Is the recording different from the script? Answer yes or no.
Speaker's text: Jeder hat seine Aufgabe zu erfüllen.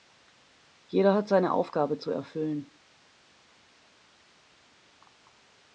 no